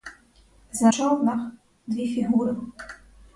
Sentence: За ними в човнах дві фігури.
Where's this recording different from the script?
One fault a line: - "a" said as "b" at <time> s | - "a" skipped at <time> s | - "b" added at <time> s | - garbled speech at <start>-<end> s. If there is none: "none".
- "ними в" skipped at 0.9 s